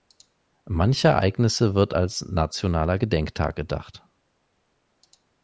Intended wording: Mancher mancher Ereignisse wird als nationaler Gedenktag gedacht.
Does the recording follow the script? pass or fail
fail